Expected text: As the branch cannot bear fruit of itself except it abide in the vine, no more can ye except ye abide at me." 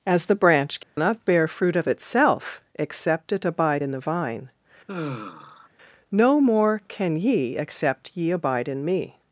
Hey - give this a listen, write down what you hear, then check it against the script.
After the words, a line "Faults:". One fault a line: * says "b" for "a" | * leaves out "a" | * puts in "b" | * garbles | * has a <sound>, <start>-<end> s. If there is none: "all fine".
As the branch cannot bear fruit of itself except it abide in the vine, no more can ye except ye abide in me."
Faults:
* has a dropout, 0.8-1.0 s
* has a sigh, 4.9-5.7 s
* says "in" for "at"